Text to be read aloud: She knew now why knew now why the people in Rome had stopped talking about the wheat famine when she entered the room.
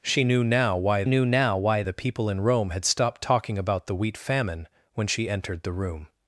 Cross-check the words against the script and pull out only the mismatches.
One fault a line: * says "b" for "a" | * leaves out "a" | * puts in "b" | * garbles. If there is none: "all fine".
all fine